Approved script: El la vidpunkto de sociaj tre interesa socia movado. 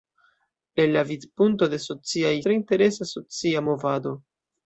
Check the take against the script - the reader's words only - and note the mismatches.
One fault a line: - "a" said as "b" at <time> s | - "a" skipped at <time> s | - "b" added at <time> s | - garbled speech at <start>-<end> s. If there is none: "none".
none